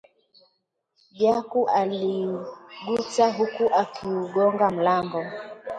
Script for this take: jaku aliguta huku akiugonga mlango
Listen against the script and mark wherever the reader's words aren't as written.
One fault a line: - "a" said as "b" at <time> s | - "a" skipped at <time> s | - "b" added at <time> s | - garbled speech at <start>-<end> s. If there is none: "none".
none